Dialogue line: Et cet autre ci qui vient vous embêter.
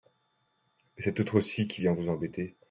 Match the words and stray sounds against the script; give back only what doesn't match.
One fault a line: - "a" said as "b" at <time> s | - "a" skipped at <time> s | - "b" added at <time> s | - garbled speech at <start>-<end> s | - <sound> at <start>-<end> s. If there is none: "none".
none